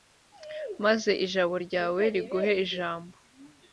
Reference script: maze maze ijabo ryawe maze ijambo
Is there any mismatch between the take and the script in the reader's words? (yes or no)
yes